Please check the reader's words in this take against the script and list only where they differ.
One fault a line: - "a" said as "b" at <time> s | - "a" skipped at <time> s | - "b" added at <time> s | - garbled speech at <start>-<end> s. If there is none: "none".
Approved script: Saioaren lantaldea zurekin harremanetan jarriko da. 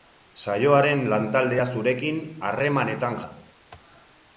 - "jarriko" skipped at 3.2 s